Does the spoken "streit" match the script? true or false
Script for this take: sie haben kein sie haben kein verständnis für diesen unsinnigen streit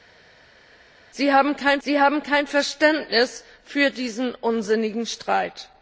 true